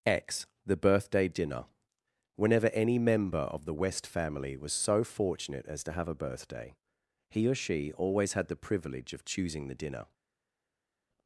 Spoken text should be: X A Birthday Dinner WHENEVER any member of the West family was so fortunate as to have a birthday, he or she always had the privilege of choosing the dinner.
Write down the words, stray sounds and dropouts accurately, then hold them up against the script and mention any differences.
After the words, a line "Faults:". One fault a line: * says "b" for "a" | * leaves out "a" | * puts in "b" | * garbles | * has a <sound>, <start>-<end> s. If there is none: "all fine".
X The Birthday Dinner WHENEVER any member of the West family was so fortunate as to have a birthday, he or she always had the privilege of choosing the dinner.
Faults:
* says "The" for "A"